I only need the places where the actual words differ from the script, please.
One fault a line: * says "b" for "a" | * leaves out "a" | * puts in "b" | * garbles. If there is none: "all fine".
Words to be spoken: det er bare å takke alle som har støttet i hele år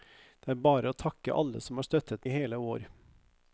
all fine